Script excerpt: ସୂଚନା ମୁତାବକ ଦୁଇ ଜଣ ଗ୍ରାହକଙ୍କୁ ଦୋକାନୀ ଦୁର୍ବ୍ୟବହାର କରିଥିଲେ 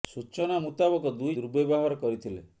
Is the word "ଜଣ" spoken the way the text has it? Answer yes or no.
no